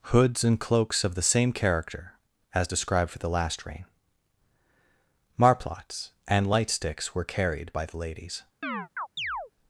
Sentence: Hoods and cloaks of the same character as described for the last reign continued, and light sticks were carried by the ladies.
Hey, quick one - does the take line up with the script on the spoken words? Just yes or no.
no